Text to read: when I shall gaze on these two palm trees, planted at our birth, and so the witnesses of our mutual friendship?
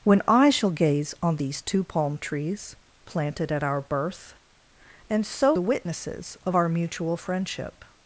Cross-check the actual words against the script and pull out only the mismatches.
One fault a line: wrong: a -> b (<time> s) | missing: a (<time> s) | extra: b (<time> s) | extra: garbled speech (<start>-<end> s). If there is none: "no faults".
no faults